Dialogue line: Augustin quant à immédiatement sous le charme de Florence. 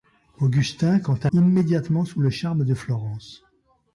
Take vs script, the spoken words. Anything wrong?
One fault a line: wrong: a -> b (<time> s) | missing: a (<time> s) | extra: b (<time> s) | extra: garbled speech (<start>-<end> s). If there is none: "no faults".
no faults